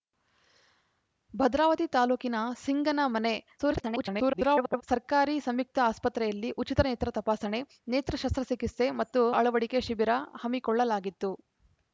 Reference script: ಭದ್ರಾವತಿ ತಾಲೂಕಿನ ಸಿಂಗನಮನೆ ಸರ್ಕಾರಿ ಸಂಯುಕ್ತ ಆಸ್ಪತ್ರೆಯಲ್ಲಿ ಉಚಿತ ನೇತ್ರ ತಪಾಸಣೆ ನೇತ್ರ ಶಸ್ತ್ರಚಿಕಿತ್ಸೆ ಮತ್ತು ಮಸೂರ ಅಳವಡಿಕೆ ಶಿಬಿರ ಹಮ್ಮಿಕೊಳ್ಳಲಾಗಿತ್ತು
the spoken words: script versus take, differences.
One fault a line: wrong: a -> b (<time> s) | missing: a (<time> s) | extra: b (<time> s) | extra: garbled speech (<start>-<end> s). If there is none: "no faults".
extra: garbled speech (3.6-4.8 s)
missing: ಮಸೂರ (9.2 s)